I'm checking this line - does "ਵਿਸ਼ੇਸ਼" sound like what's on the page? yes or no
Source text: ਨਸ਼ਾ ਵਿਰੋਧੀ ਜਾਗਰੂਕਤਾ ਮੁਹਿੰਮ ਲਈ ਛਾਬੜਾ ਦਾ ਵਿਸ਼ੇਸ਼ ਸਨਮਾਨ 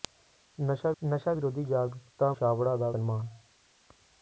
no